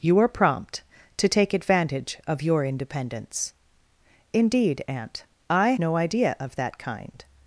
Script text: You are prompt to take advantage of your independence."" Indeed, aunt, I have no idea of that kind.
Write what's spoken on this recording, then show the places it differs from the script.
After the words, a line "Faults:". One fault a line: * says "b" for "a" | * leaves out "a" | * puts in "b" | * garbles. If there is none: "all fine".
You are prompt to take advantage of your independence."" Indeed, aunt, I no idea of that kind.
Faults:
* leaves out "have"